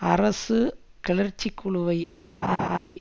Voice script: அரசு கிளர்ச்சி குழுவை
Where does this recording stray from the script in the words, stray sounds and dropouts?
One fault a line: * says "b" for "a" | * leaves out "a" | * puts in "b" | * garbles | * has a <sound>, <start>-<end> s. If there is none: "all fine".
* has a laugh, 2.4-2.8 s